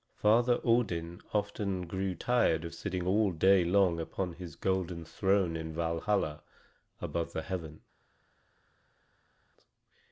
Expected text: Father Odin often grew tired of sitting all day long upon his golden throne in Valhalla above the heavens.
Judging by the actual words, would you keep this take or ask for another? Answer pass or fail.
pass